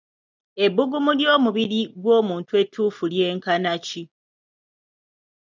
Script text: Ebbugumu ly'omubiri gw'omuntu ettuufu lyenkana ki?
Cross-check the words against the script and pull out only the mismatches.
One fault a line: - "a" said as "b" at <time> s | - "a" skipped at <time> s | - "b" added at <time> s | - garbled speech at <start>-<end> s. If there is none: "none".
none